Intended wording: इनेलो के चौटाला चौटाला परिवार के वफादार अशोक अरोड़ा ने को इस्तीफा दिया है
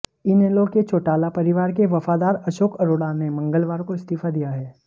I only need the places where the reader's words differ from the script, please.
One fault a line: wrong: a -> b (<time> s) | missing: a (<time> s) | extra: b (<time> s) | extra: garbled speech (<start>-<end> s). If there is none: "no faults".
missing: चौटाला (1.3 s)
extra: मंगलवार (3.3 s)